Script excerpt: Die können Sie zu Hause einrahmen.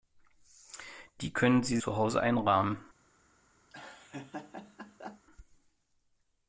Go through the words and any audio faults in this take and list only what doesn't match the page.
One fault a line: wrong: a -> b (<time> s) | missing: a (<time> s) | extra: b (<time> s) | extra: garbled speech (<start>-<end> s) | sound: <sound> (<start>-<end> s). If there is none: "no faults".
sound: laugh (3.7-5.3 s)